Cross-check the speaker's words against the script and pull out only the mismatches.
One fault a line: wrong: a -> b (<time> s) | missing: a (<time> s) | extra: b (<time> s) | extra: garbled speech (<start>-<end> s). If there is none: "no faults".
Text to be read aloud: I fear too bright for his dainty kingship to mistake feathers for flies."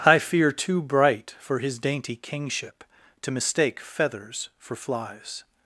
no faults